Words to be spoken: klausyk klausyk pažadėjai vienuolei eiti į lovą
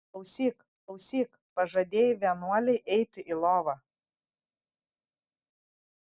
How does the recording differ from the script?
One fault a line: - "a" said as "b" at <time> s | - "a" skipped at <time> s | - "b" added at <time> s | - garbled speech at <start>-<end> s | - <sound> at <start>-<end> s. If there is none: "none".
none